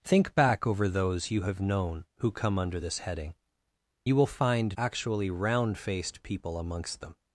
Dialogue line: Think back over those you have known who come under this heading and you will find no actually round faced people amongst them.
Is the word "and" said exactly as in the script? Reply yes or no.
no